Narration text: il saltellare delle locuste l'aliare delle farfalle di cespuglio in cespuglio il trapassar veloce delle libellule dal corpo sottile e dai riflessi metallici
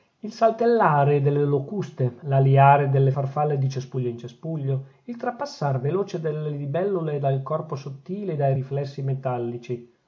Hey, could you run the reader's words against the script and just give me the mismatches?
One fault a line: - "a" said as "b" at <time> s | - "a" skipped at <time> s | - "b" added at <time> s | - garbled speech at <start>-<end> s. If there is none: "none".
none